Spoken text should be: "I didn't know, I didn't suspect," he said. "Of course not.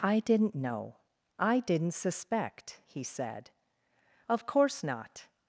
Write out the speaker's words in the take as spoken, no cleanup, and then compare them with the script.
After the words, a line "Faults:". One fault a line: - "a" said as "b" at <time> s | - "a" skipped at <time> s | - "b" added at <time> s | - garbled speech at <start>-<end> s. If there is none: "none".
"I didn't know, I didn't suspect," he said. "Of course not.
Faults:
none